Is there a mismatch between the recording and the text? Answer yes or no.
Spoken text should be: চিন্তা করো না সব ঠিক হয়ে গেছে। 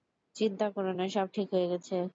no